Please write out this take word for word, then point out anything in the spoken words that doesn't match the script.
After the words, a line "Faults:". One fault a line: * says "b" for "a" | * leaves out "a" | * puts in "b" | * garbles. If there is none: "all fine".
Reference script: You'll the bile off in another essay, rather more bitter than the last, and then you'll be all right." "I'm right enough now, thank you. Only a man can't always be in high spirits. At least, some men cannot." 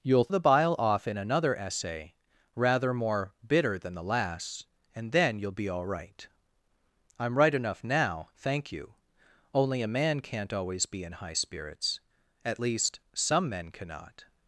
You'll the bile off in another essay, rather more bitter than the last, and then you'll be all right." "I'm right enough now, thank you. Only a man can't always be in high spirits. At least, some men cannot."
Faults:
all fine